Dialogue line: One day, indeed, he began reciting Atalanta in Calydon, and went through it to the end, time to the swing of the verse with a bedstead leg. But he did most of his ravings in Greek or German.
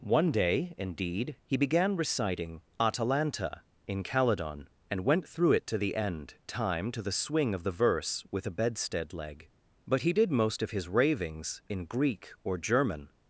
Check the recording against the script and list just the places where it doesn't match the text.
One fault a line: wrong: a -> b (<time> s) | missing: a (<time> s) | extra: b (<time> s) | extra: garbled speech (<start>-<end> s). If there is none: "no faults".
no faults